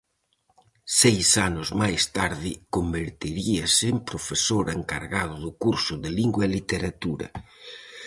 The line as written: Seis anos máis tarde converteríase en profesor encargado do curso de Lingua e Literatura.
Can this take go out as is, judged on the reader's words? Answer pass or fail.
pass